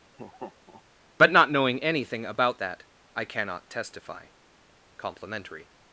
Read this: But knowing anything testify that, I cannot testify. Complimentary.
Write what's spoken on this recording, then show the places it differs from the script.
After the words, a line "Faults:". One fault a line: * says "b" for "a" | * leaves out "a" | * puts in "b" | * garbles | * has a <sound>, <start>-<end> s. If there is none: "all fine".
But not knowing anything about that, I cannot testify. Complimentary.
Faults:
* has a laugh, 0.1-0.8 s
* puts in "not"
* says "about" for "testify"